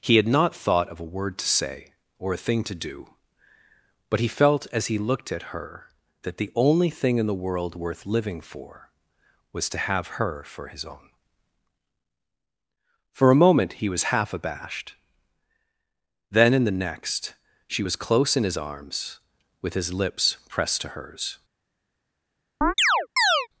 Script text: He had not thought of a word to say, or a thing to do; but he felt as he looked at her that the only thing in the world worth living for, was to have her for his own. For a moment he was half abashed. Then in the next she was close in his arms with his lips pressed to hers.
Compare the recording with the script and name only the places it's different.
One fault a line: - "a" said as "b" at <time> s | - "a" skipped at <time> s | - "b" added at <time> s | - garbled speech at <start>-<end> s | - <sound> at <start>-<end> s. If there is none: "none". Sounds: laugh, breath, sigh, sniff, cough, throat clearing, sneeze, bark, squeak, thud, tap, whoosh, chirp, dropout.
- chirp at 22.6-23.5 s